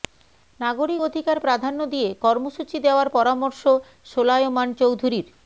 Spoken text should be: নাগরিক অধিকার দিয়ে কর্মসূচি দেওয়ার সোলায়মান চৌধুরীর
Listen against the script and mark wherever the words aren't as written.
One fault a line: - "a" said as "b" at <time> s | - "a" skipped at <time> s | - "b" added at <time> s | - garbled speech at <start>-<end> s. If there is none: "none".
- "প্রাধান্য" added at 1.4 s
- "পরামর্শ" added at 3.1 s